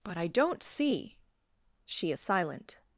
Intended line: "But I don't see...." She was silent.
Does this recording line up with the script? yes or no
no